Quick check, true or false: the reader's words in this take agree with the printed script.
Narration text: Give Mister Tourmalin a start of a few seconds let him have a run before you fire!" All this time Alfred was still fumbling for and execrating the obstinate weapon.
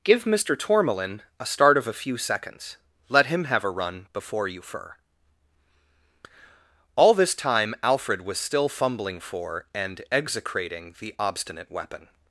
false